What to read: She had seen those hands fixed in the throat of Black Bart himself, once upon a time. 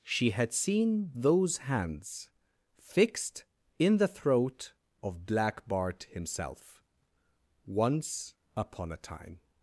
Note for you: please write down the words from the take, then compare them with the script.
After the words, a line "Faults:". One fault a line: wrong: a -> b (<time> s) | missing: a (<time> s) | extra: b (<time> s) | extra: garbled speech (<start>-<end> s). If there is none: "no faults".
She had seen those hands fixed in the throat of Black Bart himself, once upon a time.
Faults:
no faults